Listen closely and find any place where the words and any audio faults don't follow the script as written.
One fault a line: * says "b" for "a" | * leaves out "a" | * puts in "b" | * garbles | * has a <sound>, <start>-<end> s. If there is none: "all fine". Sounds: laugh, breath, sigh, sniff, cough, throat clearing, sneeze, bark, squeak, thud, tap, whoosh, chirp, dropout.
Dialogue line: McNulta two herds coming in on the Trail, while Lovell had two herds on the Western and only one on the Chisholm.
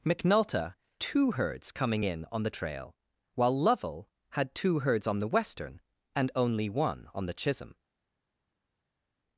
all fine